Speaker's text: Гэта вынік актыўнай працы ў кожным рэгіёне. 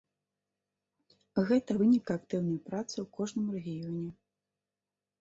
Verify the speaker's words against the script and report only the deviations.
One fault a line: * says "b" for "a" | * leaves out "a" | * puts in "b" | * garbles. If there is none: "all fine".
all fine